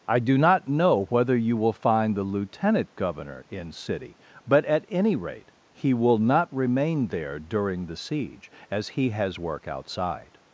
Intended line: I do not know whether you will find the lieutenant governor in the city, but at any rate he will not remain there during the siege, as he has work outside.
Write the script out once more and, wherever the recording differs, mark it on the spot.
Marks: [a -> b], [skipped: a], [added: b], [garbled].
I do not know whether you will find the lieutenant governor in [skipped: the] city, but at any rate he will not remain there during the siege, as he has work outside.